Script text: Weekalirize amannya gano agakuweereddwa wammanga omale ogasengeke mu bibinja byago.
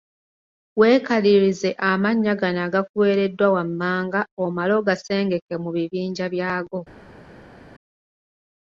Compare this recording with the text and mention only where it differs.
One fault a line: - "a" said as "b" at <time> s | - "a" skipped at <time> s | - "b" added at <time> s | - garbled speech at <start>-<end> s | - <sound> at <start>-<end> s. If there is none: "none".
none